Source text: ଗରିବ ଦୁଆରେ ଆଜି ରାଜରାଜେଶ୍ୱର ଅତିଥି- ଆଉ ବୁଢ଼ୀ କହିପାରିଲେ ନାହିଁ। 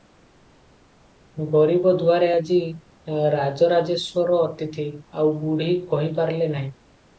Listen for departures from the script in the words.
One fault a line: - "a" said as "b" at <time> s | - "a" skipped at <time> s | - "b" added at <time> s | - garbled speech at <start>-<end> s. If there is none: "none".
none